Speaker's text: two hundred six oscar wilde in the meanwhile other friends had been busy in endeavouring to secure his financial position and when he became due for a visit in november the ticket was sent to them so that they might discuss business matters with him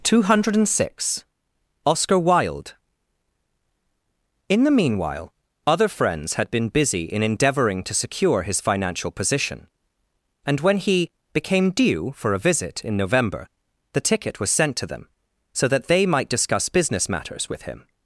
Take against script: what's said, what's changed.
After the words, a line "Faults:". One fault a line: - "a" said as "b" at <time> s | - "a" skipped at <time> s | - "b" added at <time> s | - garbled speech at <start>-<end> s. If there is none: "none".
two hundred six oscar wilde in the meanwhile other friends had been busy in endeavouring to secure his financial position and when he became due for a visit in november the ticket was sent to them so that they might discuss business matters with him
Faults:
none